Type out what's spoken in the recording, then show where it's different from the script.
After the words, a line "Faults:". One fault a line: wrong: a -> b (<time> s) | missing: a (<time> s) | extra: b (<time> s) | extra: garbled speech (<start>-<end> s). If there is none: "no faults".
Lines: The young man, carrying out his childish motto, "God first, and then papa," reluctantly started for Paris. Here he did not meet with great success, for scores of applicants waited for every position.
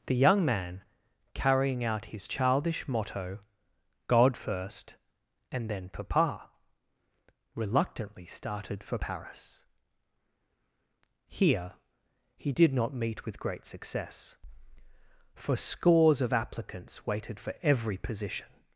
The young man, carrying out his childish motto, "God first, and then papa," reluctantly started for Paris. Here he did not meet with great success, for scores of applicants waited for every position.
Faults:
no faults